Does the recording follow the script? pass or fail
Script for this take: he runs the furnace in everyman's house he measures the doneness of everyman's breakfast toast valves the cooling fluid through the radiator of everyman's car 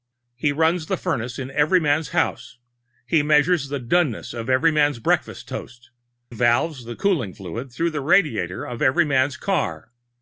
pass